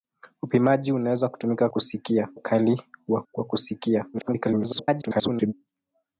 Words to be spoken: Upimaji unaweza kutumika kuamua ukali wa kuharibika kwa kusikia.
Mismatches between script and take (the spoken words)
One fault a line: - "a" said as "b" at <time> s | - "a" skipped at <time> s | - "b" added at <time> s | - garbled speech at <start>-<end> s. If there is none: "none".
- "kuamua" said as "kusikia" at 1.7 s
- "kuharibika" skipped at 3.2 s
- garbled speech at 4.1-5.5 s